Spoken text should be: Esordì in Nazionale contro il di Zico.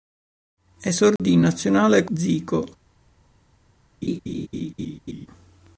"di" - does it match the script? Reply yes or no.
no